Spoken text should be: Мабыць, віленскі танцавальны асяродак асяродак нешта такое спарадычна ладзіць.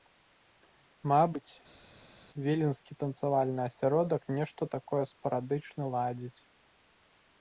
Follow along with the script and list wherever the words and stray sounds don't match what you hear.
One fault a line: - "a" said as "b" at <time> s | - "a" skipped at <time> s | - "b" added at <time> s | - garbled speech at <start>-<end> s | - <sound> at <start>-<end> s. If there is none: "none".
- "асяродак" skipped at 4.2 s